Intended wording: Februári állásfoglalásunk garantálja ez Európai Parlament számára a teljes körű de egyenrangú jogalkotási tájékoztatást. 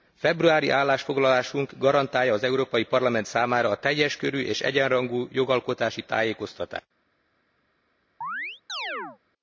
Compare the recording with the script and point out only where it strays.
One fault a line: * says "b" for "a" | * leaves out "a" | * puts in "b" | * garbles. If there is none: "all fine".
* says "az" for "ez"
* says "és" for "de"